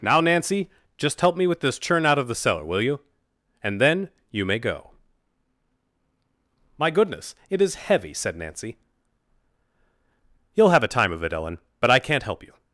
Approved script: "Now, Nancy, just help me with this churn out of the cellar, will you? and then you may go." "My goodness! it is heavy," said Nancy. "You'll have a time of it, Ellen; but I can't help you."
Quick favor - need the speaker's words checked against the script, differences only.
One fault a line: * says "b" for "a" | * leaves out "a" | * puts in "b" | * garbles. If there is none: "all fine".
all fine